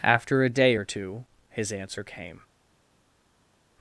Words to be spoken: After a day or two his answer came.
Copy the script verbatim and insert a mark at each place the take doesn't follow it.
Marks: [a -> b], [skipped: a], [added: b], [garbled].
After a day or two his answer came.